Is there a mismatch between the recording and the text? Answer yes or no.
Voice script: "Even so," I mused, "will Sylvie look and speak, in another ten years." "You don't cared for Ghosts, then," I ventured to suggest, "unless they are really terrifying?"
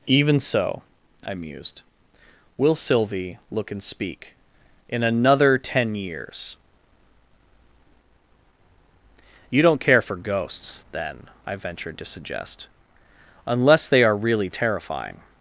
yes